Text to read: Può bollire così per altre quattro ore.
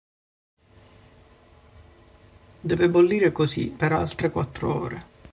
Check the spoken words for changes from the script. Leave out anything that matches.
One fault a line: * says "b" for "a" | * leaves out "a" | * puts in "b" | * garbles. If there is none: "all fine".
* says "Deve" for "Può"